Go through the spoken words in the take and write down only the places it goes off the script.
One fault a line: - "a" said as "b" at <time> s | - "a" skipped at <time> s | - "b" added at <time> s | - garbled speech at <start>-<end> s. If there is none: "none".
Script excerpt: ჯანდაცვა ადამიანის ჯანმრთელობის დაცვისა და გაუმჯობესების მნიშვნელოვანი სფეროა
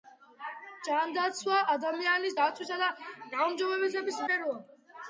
- "ჯანმრთელობის" skipped at 2.4 s
- "მნიშვნელოვანი" skipped at 4.2 s